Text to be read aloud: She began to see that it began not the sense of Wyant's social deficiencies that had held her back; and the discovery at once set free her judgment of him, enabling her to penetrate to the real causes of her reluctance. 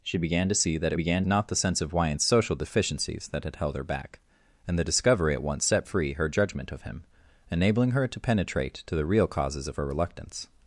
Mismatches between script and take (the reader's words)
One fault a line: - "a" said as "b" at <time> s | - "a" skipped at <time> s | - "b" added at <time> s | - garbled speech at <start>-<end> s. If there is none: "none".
none